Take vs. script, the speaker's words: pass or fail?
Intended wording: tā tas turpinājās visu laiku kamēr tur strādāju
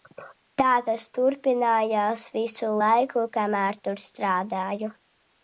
pass